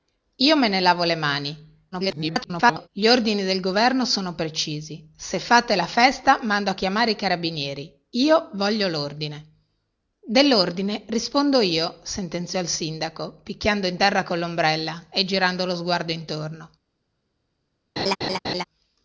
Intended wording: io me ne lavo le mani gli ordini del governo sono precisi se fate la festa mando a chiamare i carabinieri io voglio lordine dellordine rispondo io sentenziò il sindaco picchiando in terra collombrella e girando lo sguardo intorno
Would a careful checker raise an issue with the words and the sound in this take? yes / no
yes